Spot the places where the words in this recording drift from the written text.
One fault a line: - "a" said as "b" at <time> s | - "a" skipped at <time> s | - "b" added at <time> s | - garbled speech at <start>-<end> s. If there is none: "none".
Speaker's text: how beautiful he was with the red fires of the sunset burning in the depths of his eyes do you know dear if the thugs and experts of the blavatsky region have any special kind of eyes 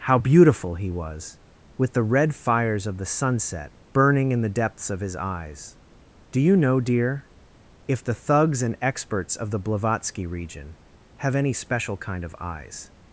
none